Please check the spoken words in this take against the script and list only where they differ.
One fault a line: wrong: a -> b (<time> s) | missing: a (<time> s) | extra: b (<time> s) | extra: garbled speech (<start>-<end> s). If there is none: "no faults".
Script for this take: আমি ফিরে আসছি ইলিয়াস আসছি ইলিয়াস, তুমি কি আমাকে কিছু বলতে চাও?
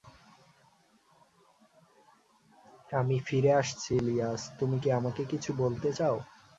missing: আসছি ইলিয়াস (4.4 s)